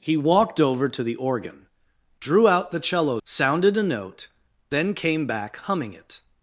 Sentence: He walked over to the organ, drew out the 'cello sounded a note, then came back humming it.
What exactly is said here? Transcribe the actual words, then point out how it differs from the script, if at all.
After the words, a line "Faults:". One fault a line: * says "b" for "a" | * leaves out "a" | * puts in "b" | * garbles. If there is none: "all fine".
He walked over to the organ, drew out the 'cello sounded a note, then came back humming it.
Faults:
all fine